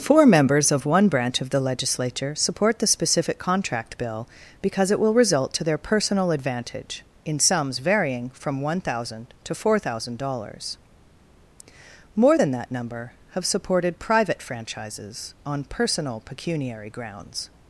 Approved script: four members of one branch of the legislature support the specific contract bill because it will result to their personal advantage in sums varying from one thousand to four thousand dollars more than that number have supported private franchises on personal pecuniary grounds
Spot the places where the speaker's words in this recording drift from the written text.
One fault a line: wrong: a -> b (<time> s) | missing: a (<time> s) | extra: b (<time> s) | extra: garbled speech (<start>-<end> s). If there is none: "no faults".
no faults